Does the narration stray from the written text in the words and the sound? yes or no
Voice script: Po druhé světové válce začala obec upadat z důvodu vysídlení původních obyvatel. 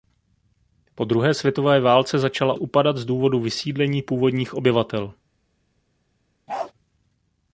yes